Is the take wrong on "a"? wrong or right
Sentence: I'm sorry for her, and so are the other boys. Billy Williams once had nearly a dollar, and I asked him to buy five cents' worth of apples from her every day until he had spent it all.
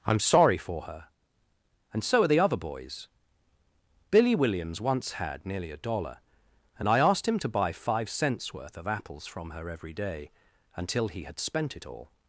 right